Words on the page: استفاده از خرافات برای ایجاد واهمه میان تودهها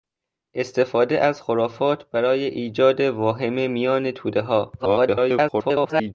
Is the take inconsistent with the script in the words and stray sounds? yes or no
yes